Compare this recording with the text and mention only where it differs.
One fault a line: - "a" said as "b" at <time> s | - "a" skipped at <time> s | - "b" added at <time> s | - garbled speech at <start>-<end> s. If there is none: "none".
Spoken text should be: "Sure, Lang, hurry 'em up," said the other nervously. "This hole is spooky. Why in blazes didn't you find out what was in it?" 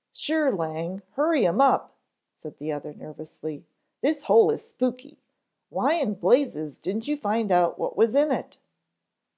none